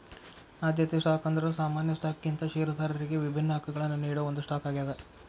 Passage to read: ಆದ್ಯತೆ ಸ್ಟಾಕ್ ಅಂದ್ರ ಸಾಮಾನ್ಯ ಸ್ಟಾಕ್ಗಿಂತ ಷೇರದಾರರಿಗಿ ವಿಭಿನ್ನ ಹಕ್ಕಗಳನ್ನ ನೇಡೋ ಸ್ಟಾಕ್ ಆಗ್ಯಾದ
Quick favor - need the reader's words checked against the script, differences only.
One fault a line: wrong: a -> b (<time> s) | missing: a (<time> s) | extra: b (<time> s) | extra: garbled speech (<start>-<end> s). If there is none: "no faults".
extra: ಒಂದ್ (4.3 s)